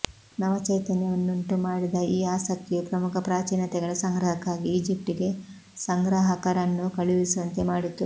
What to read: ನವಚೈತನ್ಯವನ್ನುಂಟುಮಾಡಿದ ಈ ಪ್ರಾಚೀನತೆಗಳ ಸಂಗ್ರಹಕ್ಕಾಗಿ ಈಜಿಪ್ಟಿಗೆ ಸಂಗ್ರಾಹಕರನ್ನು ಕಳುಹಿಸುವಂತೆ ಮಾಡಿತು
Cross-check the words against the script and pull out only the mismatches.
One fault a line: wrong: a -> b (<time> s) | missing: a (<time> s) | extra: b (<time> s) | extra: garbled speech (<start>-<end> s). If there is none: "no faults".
extra: ಆಸಕ್ತಿಯು ಪ್ರಮುಖ (2.3 s)